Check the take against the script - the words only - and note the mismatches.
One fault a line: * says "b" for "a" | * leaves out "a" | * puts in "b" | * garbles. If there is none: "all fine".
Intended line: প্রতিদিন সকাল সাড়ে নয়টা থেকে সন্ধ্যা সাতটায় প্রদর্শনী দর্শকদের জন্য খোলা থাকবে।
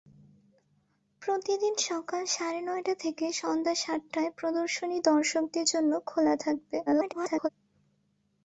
* garbles